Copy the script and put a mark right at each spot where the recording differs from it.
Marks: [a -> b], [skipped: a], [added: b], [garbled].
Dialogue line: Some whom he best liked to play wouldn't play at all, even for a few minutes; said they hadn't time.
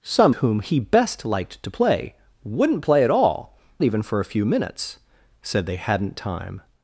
Some whom he best liked to play wouldn't play at all, even for a few minutes; said they hadn't time.